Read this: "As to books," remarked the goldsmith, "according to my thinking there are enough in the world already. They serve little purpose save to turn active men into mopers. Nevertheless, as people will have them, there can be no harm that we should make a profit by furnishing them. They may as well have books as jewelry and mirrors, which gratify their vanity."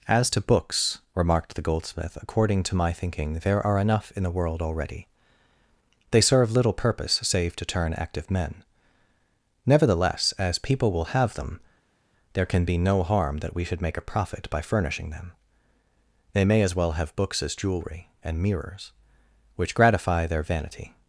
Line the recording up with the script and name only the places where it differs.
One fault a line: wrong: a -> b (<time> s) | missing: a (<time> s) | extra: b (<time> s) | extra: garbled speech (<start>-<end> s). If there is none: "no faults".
missing: into mopers (8.6 s)